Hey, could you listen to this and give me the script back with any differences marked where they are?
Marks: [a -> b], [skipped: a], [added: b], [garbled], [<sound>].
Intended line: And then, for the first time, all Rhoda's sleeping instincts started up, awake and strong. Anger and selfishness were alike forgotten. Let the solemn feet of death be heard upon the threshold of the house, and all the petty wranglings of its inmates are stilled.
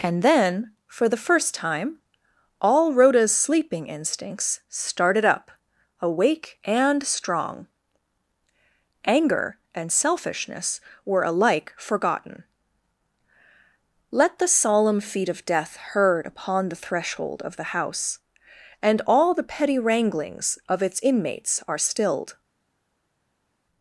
And then, for the first time, all Rhoda's sleeping instincts started up, awake and strong. Anger and selfishness were alike forgotten. Let the solemn feet of death [skipped: be] heard upon the threshold of the house, and all the petty wranglings of its inmates are stilled.